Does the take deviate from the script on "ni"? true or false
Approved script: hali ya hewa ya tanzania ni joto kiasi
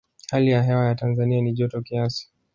false